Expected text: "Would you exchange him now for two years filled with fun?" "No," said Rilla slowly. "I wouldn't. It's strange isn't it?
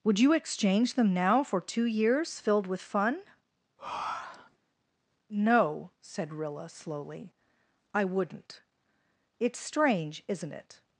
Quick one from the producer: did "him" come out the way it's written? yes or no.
no